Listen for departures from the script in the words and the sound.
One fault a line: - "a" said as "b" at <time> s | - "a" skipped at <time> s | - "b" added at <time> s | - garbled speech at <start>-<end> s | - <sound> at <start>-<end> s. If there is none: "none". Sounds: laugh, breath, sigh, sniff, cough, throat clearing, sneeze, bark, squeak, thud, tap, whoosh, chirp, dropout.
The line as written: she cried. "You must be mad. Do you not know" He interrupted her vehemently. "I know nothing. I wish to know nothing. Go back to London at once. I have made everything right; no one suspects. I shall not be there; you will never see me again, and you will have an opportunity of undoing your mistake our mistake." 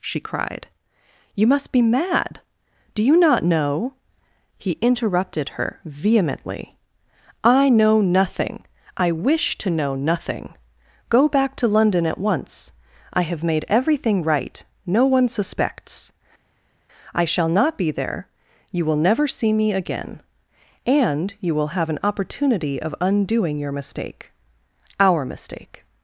none